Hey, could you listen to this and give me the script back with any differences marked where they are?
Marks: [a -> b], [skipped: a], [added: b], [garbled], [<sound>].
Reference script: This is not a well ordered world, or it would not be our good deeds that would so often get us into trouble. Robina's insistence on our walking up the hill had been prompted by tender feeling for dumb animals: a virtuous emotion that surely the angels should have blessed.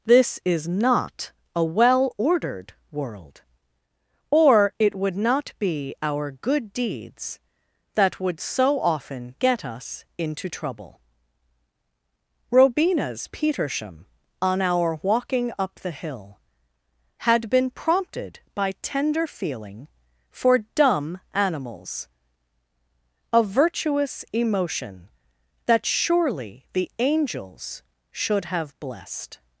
This is not a well ordered world, or it would not be our good deeds that would so often get us into trouble. Robina's [insistence -> petersham] on our walking up the hill had been prompted by tender feeling for dumb animals: a virtuous emotion that surely the angels should have blessed.